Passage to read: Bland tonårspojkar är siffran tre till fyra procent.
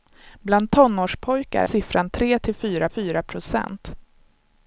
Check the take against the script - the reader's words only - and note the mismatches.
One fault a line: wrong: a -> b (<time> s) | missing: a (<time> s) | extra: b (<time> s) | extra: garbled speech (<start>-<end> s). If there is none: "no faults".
missing: är (1.6 s)
extra: fyra (2.9 s)